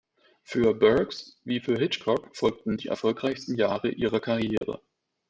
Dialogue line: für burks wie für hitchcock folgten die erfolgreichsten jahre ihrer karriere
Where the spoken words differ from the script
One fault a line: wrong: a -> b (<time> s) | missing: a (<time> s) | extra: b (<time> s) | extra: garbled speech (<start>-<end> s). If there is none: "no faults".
no faults